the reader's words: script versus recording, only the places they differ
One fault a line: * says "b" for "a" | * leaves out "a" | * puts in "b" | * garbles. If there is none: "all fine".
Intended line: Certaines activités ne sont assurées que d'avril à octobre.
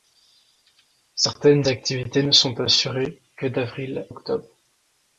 * leaves out "à"